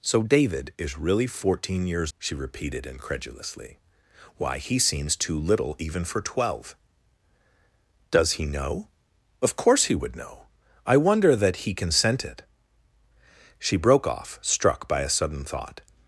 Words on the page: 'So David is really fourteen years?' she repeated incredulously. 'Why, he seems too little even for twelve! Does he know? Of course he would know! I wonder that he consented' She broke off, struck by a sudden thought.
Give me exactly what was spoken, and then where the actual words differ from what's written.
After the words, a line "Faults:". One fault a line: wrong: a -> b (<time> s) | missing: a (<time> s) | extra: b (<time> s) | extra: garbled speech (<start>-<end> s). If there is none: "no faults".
'So David is really fourteen years?' she repeated incredulously. 'Why, he seems too little even for twelve! Does he know? Of course he would know! I wonder that he consented' She broke off, struck by a sudden thought.
Faults:
no faults